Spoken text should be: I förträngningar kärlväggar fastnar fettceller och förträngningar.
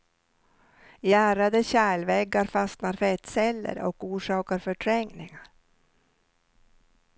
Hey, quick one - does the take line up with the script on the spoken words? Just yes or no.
no